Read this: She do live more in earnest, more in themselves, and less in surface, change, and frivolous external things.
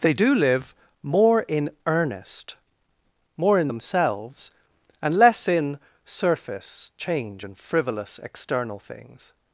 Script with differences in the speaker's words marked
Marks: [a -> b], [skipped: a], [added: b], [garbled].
[She -> They] do live more in earnest, more in themselves, and less in surface, change, and frivolous external things.